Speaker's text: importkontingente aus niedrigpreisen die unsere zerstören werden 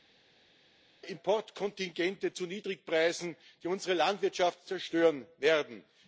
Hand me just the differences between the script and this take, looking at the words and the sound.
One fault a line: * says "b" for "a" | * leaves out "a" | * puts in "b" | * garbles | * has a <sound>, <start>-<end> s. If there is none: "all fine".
* says "zu" for "aus"
* puts in "landwirtschaft"